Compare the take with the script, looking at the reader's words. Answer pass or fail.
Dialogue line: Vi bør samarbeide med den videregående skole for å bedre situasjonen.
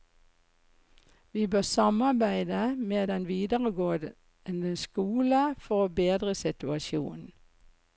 pass